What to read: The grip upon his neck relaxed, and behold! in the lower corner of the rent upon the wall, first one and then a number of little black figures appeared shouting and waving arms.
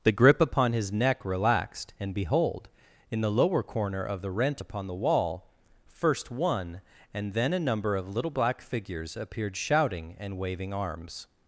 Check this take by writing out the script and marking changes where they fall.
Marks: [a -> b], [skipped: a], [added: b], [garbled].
The grip upon his neck relaxed, and behold! in the lower corner of the rent upon the wall, first one and then a number of little black figures appeared shouting and waving arms.